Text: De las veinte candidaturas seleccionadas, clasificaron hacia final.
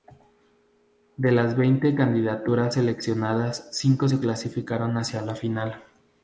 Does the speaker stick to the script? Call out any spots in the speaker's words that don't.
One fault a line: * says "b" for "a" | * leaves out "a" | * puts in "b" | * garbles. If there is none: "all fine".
* puts in "cinco se"
* puts in "la"